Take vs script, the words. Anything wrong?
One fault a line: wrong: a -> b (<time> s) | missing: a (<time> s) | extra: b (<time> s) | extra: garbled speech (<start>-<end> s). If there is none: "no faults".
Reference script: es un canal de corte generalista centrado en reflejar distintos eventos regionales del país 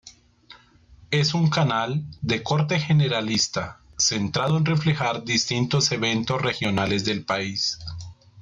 no faults